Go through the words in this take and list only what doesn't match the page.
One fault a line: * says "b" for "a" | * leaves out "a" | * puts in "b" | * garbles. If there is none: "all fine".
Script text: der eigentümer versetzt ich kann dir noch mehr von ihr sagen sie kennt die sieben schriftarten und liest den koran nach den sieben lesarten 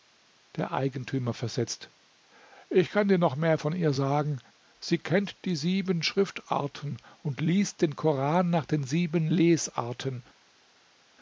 all fine